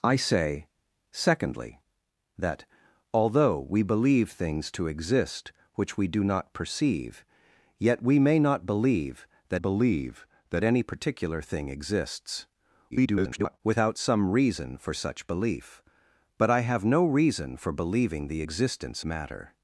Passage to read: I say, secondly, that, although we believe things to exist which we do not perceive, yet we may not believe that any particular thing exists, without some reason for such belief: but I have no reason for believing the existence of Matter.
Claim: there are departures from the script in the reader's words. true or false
true